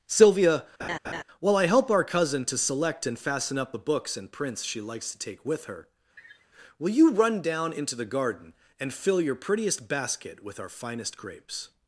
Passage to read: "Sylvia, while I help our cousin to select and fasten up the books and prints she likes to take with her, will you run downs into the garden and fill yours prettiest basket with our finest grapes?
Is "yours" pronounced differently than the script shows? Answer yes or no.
yes